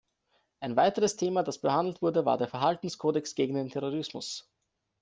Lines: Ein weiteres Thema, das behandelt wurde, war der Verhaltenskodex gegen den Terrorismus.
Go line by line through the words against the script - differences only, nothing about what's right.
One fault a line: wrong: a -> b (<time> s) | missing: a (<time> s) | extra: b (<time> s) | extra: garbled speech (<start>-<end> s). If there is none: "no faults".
no faults